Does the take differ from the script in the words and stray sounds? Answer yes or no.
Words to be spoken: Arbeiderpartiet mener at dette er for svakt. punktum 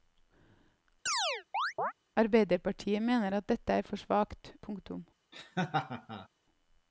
yes